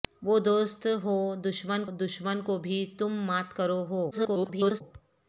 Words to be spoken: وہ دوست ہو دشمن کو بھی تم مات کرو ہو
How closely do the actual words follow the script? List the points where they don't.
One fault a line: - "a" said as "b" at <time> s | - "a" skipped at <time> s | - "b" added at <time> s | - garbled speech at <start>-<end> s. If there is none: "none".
- "دشمن" added at 1.9 s
- garbled speech at 4.1-4.8 s